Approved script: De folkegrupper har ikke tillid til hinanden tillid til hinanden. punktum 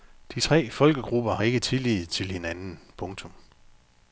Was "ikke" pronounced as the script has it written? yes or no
yes